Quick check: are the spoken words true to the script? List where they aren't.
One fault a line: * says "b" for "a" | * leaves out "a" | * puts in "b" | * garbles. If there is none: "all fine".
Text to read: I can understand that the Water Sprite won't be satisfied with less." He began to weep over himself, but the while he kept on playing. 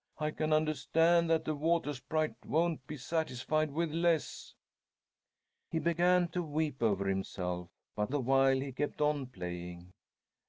all fine